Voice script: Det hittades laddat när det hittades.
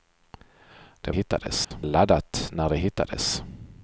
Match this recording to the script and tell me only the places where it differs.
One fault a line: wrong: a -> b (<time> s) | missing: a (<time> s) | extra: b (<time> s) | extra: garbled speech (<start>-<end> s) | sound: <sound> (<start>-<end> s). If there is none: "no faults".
sound: dropout (1.6-1.7 s)